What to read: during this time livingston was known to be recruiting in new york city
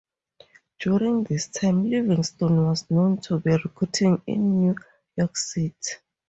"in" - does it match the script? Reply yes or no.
yes